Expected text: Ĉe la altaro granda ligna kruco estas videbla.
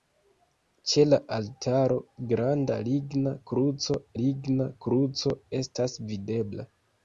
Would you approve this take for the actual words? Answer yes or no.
no